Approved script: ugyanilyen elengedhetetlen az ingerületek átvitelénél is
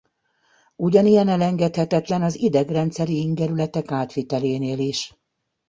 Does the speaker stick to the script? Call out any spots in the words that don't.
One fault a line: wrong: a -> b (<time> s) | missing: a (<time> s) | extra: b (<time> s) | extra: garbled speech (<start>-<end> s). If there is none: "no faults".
extra: idegrendszeri (2.4 s)